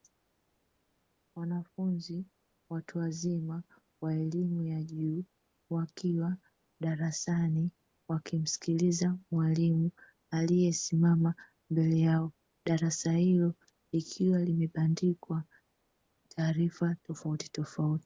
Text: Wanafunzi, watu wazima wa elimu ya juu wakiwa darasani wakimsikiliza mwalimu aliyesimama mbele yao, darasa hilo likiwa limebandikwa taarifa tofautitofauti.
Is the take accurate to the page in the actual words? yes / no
yes